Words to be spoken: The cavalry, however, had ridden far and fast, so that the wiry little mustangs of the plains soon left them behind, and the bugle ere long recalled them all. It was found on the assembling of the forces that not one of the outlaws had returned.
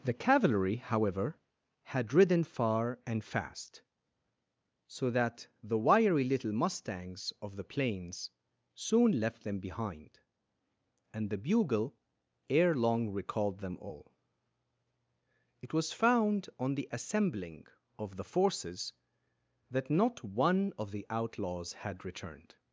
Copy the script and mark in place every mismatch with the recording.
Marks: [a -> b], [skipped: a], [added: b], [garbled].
The cavalry, however, had ridden far and fast, so that the wiry little mustangs of the plains soon left them behind, and the bugle ere long recalled them all. It was found on the assembling of the forces that not one of the outlaws had returned.